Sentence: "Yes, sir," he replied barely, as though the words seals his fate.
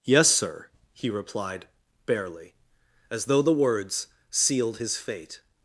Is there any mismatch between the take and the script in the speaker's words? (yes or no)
yes